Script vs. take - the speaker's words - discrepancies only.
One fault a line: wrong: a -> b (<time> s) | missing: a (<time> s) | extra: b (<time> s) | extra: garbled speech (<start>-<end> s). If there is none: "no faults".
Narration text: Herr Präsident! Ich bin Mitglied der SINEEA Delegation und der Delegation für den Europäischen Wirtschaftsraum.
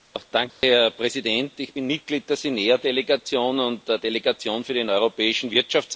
no faults